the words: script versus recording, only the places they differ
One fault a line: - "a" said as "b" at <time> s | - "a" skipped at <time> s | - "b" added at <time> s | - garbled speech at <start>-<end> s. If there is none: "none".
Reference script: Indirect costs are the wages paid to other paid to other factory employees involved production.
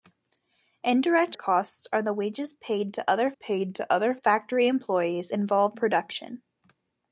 none